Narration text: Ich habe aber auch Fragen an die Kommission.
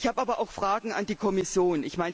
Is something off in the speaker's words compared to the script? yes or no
no